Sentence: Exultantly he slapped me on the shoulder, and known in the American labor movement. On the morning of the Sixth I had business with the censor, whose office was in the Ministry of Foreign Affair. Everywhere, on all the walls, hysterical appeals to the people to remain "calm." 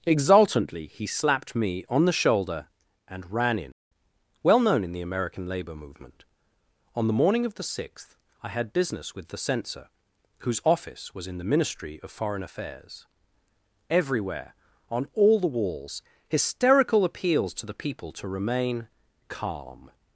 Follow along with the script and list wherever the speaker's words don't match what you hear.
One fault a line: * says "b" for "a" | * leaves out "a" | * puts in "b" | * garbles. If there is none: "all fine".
* puts in "ran in Well"
* says "Affairs" for "Affair"